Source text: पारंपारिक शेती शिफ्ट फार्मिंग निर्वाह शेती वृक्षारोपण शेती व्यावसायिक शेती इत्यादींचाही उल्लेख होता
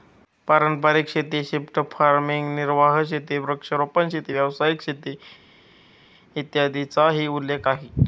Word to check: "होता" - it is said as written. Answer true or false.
false